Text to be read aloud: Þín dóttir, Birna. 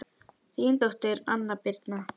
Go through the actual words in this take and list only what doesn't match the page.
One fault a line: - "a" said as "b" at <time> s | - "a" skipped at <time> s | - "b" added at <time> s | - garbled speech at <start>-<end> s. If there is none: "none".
- "Anna" added at 1.4 s